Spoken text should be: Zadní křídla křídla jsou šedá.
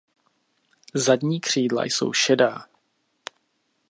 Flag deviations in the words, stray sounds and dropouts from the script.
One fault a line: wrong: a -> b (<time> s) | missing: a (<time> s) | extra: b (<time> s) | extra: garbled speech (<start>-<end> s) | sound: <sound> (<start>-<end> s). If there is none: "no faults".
missing: křídla (1.9 s)